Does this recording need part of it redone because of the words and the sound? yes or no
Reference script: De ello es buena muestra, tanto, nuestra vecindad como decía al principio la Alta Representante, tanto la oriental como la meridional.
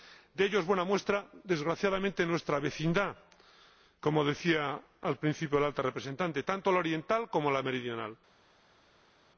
yes